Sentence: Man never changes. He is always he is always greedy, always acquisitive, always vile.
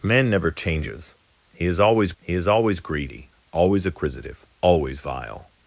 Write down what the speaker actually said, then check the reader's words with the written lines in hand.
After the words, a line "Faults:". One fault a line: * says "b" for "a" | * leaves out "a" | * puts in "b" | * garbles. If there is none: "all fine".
Man never changes. He is always he is always greedy, always acquisitive, always vile.
Faults:
all fine